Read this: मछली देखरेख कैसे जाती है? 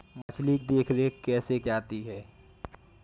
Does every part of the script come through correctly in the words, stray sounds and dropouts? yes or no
no